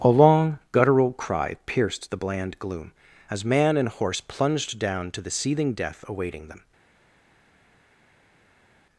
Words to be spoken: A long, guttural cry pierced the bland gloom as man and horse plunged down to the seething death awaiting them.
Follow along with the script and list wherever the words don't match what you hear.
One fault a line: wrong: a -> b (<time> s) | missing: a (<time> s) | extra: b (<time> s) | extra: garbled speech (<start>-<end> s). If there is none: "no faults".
no faults